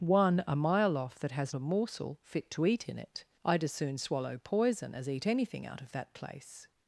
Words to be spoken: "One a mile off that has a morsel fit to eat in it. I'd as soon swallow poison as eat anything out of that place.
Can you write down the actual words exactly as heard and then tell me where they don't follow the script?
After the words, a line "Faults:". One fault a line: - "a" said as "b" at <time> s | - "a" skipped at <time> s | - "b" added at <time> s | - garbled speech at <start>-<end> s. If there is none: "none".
"One a mile off that has a morsel fit to eat in it. I'd as soon swallow poison as eat anything out of that place.
Faults:
none